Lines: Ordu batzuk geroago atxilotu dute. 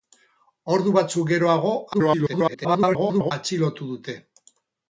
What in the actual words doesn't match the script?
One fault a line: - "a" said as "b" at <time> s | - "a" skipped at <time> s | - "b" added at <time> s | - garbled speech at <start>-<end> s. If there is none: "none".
- garbled speech at 1.9-3.3 s